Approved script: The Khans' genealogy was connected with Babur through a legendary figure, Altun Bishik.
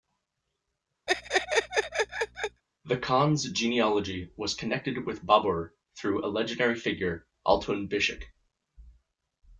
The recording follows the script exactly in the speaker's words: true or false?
true